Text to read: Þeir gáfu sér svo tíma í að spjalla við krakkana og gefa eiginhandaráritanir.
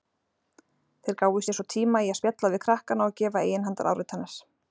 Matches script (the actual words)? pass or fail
pass